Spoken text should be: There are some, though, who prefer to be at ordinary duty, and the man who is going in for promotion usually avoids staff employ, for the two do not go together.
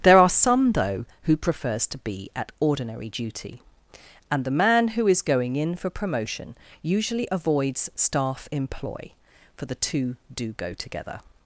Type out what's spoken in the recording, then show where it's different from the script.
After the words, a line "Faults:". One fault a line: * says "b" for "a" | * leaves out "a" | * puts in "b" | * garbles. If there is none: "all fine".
There are some, though, who prefers to be at ordinary duty, and the man who is going in for promotion usually avoids staff employ, for the two do go together.
Faults:
* says "prefers" for "prefer"
* leaves out "not"